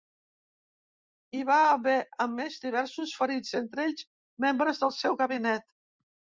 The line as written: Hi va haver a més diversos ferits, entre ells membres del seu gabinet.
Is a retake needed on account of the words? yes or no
no